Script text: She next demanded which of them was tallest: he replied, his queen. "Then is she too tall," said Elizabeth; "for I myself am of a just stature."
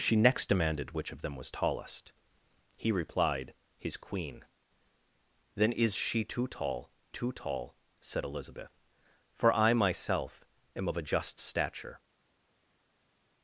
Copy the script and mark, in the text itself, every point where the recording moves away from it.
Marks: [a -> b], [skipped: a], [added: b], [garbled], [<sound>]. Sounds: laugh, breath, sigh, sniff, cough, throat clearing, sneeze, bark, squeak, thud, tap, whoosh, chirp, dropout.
She next demanded which of them was tallest: he replied, his queen. "Then is she too tall," [added: too tall] said Elizabeth; "for I myself am of a just stature."